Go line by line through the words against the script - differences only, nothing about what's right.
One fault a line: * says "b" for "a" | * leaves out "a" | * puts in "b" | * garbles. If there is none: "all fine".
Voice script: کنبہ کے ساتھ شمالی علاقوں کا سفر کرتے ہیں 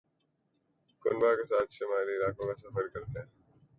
all fine